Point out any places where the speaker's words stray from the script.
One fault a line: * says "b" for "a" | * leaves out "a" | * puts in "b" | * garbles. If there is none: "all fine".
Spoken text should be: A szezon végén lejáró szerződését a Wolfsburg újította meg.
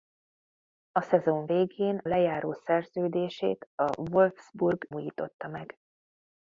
all fine